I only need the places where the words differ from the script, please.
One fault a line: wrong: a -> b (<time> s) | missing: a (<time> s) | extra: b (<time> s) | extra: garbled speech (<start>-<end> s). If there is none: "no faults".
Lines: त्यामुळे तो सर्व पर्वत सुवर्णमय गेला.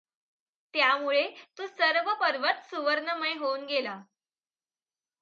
extra: होऊन (3.3 s)